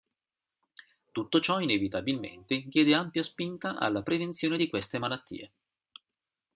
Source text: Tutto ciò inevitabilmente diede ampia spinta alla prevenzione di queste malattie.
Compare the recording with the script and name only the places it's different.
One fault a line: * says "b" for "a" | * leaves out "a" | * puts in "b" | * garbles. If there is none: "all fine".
all fine